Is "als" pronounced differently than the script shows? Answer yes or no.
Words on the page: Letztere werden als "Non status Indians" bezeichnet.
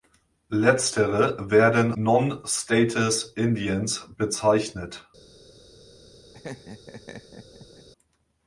yes